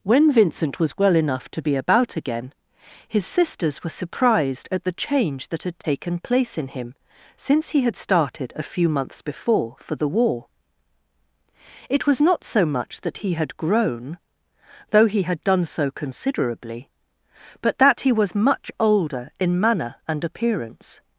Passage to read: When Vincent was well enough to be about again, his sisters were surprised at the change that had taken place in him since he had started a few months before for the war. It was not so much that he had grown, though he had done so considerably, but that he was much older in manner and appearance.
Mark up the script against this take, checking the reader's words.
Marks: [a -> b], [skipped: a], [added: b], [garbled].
When Vincent was well enough to be about again, his sisters were surprised at the change that had taken place in him since he had started a few months before for the war. It was not so much that he had grown, though he had done so considerably, but that he was much older in manner and appearance.